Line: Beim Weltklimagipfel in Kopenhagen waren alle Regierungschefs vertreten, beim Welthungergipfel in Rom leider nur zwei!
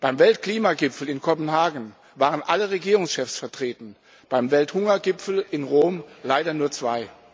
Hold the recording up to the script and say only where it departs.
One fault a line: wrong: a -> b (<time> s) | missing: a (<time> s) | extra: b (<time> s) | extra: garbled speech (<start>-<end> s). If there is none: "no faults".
no faults